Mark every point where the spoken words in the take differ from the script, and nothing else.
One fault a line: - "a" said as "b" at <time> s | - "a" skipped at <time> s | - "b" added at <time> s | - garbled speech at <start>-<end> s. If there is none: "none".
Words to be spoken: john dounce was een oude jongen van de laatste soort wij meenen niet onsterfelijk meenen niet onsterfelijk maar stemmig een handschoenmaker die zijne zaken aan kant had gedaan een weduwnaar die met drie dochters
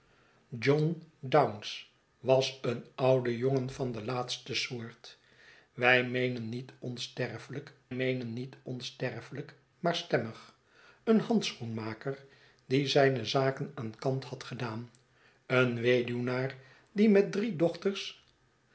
none